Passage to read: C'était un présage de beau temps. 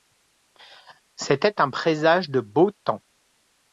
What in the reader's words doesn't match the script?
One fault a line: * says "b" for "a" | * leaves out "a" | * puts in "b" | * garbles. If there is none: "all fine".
all fine